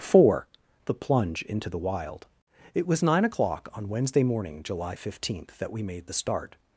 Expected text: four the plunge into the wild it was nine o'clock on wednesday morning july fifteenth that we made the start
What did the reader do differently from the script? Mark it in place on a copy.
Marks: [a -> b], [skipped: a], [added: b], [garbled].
four the plunge into the wild it was nine o'clock on wednesday morning july fifteenth that we made the start